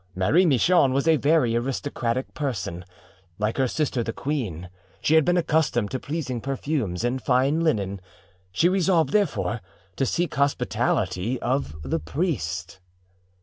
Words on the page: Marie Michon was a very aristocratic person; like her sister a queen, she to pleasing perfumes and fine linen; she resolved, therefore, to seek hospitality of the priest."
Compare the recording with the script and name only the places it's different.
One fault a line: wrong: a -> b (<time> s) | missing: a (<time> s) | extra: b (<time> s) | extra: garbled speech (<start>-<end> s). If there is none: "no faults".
wrong: a -> the (4.0 s)
extra: had been accustomed (5.1 s)